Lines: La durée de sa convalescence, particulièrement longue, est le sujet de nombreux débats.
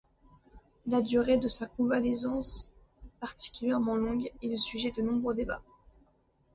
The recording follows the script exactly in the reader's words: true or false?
true